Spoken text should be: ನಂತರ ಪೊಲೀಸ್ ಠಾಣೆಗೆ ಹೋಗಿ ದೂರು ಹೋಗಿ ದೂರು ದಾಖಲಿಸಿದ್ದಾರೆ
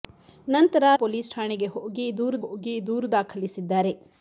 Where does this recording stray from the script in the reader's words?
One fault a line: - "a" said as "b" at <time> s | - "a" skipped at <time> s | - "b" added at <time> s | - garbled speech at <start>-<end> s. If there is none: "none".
none